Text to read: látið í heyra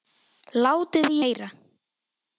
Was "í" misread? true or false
false